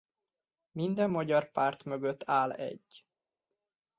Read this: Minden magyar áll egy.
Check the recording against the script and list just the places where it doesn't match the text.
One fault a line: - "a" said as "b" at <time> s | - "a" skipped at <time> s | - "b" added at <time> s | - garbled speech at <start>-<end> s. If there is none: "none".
- "párt mögött" added at 1.5 s